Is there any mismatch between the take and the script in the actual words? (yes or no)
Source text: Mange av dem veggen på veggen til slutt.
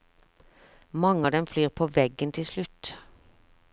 yes